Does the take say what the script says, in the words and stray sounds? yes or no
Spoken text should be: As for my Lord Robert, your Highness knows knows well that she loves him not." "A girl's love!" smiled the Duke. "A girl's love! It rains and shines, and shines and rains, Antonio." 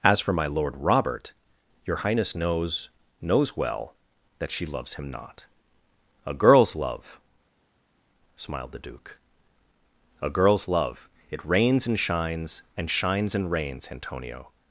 yes